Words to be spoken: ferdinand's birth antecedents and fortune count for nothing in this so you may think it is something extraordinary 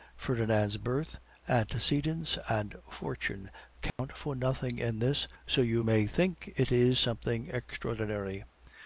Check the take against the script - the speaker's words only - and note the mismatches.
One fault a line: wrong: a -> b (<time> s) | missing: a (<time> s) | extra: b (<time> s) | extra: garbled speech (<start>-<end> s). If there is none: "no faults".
no faults